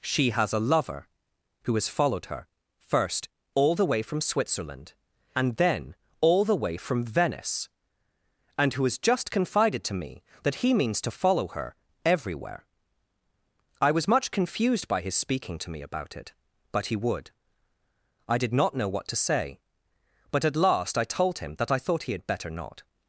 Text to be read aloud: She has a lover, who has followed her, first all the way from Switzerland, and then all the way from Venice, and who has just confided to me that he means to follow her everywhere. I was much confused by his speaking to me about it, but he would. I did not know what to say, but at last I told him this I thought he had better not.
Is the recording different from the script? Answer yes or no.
yes